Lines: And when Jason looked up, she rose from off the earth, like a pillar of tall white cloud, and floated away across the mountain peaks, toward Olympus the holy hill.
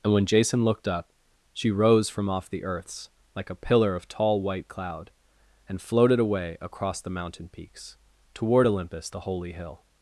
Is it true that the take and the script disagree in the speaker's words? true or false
true